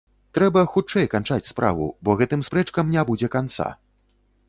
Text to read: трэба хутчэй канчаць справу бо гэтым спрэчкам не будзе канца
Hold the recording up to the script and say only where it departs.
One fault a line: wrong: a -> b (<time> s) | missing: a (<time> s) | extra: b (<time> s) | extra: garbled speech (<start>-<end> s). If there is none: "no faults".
no faults